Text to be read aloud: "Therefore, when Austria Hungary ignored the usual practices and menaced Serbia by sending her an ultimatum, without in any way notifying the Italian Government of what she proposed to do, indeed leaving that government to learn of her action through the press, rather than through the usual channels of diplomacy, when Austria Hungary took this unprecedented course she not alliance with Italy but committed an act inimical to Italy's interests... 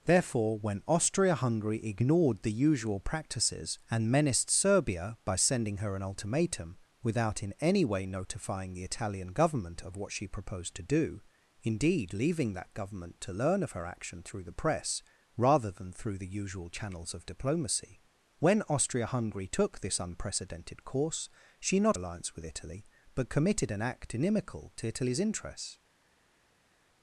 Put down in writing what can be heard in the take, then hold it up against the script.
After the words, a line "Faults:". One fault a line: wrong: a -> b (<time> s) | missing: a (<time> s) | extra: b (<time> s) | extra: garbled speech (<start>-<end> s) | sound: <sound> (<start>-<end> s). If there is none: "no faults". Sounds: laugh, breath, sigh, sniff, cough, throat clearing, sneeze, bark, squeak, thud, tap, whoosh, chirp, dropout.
"Therefore, when Austria Hungary ignored the usual practices and menaced Serbia by sending her an ultimatum, without in any way notifying the Italian Government of what she proposed to do, indeed leaving that government to learn of her action through the press, rather than through the usual channels of diplomacy, when Austria Hungary took this unprecedented course she not alliance with Italy but committed an act inimical to Italy's interests...
Faults:
no faults